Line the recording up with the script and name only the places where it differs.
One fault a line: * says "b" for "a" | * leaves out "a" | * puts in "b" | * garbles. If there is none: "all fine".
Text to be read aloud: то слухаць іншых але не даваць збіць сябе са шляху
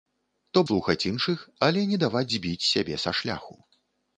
all fine